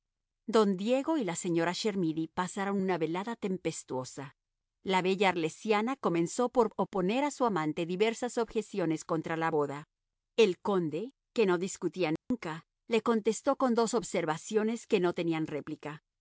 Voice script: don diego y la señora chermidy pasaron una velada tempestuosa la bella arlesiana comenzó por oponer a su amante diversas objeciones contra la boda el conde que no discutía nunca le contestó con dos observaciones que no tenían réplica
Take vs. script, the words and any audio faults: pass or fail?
fail